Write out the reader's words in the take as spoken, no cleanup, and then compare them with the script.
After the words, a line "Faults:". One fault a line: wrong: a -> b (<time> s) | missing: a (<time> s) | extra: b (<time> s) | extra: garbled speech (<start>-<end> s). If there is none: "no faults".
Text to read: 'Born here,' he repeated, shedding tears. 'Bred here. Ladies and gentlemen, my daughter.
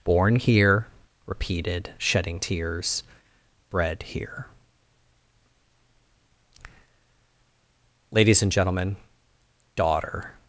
'Born here,' repeated, shedding tears. 'Bred here. Ladies and gentlemen, daughter.
Faults:
missing: he (0.9 s)
missing: my (9.0 s)